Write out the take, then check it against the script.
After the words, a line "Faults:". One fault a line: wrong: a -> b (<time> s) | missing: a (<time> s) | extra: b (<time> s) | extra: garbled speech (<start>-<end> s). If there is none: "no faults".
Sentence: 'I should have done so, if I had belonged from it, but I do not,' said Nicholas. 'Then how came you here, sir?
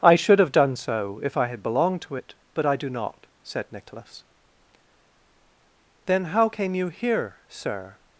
'I should have done so, if I had belonged to it, but I do not,' said Nicholas. 'Then how came you here, sir?
Faults:
wrong: from -> to (2.0 s)